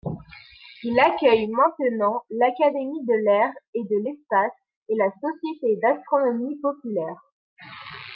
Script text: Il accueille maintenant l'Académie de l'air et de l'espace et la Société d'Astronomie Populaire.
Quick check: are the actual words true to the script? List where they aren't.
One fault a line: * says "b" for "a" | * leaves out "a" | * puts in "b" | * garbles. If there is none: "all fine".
all fine